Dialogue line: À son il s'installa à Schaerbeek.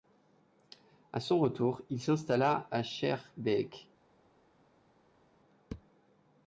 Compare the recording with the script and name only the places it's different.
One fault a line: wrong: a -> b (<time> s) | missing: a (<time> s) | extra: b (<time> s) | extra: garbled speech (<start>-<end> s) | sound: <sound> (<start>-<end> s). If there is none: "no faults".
extra: retour (1.4 s)